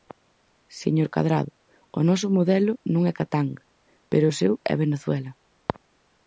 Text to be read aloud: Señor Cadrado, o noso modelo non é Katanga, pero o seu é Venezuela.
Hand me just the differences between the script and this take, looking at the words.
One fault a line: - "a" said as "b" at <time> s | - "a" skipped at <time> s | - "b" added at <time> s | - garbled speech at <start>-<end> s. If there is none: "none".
none